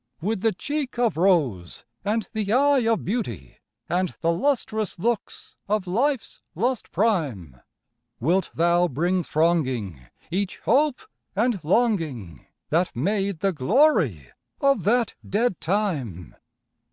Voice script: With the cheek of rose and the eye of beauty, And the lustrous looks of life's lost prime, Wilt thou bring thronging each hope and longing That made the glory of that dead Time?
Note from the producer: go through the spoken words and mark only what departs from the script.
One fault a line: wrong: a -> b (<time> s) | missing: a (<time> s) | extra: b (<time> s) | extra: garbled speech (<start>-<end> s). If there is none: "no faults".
no faults